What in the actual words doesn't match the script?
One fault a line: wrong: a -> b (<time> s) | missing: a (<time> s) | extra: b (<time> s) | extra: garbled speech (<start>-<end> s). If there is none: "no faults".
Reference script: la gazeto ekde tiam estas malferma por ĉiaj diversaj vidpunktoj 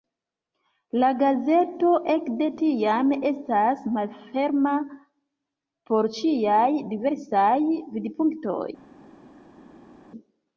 no faults